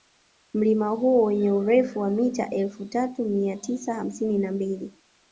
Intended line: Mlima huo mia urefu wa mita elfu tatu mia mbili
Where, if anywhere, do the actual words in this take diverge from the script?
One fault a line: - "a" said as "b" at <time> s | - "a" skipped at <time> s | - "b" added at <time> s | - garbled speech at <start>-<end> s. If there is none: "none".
- "mia" said as "wenye" at 1.2 s
- "tisa hamsini na" added at 3.6 s